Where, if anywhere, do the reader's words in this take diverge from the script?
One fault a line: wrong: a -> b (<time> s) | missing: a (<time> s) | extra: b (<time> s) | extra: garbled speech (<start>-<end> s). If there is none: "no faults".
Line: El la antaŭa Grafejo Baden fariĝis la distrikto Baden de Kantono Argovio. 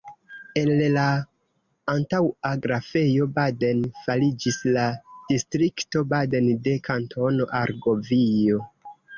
no faults